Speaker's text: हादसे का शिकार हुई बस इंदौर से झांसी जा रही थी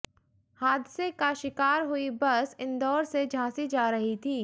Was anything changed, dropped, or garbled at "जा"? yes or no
no